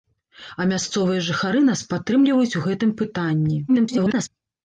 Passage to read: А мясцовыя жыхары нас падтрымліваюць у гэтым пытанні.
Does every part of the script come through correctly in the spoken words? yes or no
no